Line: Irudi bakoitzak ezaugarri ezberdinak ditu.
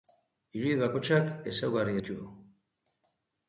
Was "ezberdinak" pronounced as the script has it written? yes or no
no